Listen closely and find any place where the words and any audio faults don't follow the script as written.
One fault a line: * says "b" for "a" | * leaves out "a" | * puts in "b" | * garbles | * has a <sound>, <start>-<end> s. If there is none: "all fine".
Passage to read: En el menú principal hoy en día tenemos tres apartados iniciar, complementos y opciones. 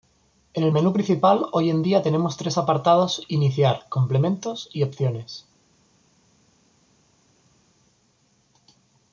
all fine